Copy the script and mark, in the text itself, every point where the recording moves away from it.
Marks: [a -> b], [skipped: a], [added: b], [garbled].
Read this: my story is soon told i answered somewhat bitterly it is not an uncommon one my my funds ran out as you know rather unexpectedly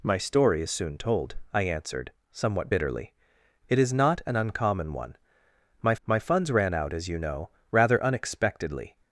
my story is soon told i answered somewhat bitterly it is not an uncommon one my my funds ran out as you know rather unexpectedly